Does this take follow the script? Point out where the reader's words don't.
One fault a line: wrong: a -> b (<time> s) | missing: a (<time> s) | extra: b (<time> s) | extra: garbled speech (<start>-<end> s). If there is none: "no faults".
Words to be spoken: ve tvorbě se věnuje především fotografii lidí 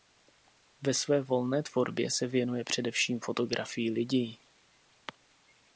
extra: své volné (0.9 s)